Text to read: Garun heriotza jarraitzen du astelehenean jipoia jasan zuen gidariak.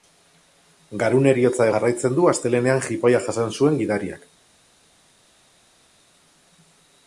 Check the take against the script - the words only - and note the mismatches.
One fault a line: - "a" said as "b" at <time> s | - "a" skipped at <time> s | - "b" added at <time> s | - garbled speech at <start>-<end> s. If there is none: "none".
none